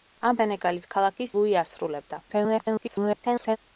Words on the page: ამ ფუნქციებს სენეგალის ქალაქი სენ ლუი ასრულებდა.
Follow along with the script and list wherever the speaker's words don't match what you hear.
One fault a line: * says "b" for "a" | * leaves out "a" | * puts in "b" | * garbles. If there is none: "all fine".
* leaves out "ფუნქციებს"
* leaves out "სენ"
* garbles